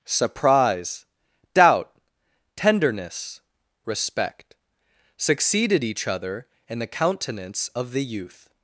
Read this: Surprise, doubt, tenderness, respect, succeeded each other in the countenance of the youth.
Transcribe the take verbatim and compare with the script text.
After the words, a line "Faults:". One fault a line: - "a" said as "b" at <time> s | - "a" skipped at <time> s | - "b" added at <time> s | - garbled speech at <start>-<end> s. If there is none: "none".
Surprise, doubt, tenderness, respect, succeeded each other in the countenance of the youth.
Faults:
none